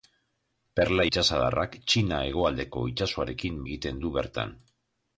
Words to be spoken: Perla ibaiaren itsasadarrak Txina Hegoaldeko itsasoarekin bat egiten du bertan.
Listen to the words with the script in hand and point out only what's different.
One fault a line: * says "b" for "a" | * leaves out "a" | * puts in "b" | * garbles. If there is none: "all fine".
* leaves out "ibaiaren"
* leaves out "bat"